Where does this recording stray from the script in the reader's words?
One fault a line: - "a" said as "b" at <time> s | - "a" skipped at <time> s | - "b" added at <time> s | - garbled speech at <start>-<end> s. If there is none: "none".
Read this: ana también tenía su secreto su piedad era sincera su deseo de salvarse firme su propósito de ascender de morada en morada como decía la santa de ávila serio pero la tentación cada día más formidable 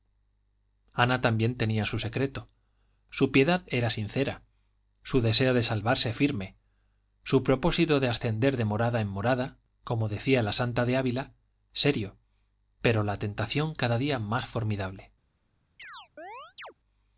none